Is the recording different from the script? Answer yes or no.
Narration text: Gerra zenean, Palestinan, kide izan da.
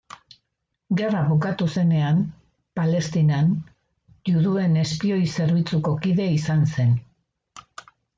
yes